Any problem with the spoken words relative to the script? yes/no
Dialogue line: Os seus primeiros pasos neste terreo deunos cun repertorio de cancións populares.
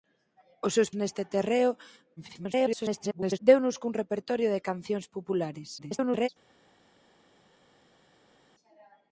yes